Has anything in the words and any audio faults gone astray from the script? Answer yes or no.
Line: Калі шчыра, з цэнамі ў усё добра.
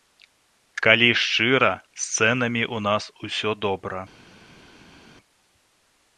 yes